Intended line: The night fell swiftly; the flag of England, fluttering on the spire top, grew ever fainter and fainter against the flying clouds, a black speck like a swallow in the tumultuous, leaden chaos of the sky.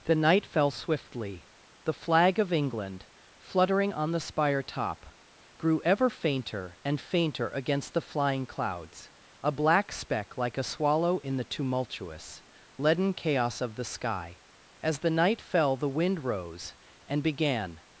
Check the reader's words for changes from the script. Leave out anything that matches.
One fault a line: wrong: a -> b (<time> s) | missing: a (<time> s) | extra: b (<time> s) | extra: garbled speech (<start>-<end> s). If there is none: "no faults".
extra: As the night fell the wind rose and began (14.8 s)